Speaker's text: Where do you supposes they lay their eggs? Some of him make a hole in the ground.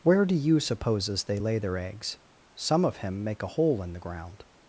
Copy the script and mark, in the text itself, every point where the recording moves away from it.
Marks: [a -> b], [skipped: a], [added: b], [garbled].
Where do you supposes they lay their eggs? Some of him make a hole in the ground.